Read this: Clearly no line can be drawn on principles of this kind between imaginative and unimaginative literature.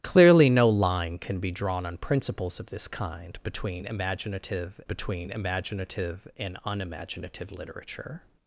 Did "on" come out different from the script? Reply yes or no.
no